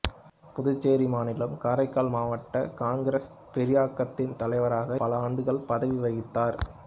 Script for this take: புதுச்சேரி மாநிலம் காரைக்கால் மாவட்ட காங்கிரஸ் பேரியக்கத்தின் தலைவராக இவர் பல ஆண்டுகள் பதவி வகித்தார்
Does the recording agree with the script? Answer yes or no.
no